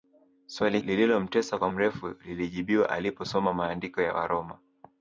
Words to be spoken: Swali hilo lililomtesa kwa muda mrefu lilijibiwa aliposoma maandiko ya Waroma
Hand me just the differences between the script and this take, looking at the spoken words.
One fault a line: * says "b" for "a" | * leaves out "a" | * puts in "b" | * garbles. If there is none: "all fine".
* leaves out "hilo"
* leaves out "muda"